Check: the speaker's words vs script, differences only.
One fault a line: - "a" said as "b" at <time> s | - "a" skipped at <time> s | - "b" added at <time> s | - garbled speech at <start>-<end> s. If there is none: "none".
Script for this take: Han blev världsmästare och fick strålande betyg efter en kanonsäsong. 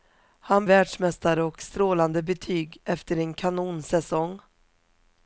- "blev" skipped at 0.7 s
- "fick" skipped at 1.6 s